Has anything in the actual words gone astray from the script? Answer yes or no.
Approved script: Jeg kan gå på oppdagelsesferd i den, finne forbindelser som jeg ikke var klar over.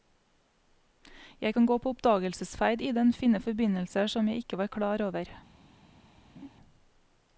no